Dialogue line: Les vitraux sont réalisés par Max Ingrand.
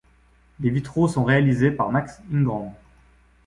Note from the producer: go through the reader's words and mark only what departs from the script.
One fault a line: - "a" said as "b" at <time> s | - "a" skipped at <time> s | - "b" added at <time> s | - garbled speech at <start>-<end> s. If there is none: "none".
none